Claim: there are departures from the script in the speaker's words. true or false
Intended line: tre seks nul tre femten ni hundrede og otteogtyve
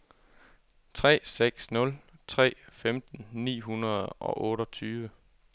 false